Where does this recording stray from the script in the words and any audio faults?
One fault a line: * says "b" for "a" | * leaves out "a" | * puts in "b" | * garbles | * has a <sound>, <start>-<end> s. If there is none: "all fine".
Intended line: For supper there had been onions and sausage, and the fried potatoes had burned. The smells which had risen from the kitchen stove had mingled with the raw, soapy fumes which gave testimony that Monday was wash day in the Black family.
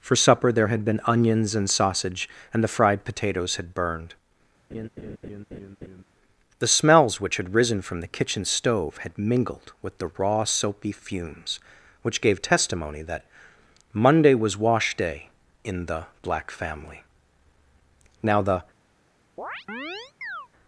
* has a laugh, 4.7-6.0 s
* puts in "Now the"
* has a chirp, 19.4-20.5 s